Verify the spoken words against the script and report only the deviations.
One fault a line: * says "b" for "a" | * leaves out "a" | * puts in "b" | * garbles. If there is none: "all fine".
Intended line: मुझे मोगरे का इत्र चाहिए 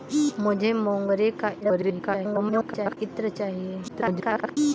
* garbles
* garbles